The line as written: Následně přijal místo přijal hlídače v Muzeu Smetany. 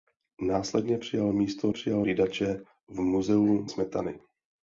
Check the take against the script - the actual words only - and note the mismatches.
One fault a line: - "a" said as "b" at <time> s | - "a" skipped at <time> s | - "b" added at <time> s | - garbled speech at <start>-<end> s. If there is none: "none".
none